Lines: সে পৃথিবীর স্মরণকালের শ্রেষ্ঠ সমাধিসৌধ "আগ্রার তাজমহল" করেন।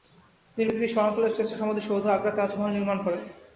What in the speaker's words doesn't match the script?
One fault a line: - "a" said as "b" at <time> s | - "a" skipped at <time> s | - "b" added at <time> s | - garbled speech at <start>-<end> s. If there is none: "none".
- "সে" said as "তিনি" at 0.6 s
- "নির্মাণ" added at 2.7 s